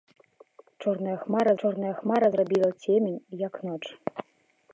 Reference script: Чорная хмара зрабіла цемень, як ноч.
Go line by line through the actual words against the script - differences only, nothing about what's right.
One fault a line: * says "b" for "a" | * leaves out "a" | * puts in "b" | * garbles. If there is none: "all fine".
* puts in "чорная хмара"